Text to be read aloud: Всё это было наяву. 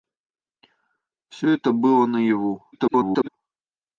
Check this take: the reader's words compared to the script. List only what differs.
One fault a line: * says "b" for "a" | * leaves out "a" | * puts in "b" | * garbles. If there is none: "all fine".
* garbles